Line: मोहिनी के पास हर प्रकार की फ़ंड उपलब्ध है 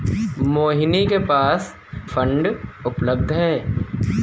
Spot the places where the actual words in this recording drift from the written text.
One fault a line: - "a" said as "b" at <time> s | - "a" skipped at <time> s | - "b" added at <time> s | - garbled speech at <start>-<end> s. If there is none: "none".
- "हर प्रकार की" skipped at 1.7 s